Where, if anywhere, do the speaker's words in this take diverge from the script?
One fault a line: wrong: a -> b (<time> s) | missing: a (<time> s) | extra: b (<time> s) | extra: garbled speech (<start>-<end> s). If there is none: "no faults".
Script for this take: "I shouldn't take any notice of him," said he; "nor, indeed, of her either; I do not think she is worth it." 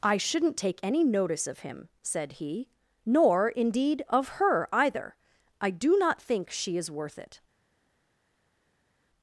no faults